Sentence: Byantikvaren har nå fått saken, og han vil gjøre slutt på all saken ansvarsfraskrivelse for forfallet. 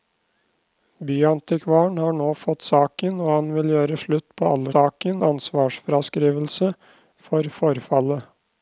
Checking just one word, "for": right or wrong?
right